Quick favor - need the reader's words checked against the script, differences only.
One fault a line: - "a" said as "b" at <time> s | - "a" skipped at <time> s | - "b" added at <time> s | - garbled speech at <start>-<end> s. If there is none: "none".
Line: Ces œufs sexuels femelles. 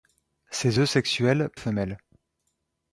none